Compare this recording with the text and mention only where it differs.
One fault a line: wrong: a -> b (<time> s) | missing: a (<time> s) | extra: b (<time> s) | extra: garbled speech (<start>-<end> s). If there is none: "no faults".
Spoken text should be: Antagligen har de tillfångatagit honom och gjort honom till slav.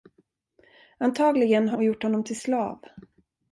missing: de tillfångatagit honom (1.8 s)